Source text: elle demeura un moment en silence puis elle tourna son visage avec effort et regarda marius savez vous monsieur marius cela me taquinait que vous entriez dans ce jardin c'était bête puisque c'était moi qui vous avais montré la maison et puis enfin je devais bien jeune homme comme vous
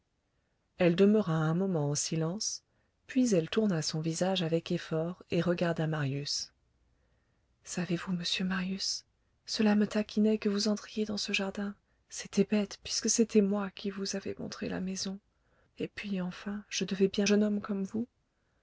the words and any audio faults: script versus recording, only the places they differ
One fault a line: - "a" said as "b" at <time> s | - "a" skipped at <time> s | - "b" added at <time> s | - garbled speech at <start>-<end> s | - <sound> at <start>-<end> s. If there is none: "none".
none